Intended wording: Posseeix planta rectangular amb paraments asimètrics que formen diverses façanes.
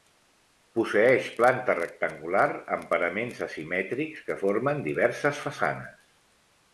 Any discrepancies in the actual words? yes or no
no